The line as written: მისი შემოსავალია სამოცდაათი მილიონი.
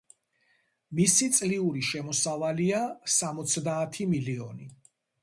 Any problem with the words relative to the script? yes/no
yes